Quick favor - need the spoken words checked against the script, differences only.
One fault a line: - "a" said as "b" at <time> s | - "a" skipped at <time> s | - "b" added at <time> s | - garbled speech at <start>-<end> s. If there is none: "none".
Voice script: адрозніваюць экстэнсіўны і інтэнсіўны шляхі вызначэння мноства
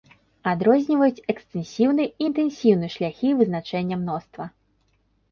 none